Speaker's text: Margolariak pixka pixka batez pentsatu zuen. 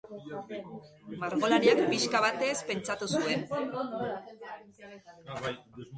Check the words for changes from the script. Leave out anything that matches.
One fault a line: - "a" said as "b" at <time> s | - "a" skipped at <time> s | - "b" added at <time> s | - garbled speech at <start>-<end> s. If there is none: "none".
- "pixka" skipped at 2.2 s